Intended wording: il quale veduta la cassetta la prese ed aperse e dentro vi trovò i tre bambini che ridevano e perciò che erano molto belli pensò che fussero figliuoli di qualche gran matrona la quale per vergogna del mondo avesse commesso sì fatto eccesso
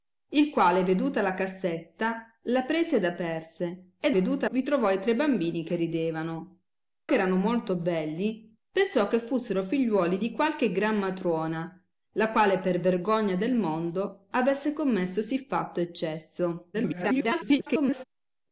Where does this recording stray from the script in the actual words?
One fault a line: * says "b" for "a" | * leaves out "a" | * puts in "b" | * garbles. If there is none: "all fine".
* says "veduta" for "dentro"
* leaves out "e perciò"
* garbles